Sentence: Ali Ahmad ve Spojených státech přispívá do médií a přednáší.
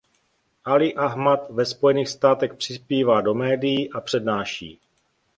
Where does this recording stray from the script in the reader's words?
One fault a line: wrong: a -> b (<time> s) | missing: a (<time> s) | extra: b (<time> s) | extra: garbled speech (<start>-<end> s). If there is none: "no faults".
no faults